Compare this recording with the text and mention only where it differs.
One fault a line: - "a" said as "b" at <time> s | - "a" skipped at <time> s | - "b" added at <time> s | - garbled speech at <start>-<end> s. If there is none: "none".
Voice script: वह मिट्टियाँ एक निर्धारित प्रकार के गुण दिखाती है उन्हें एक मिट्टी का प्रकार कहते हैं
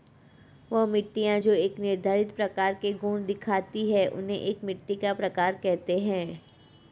- "जो" added at 1.4 s